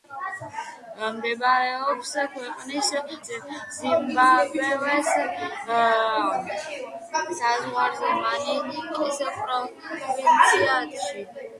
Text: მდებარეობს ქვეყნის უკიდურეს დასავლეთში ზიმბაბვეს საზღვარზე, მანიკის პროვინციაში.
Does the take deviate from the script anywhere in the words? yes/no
yes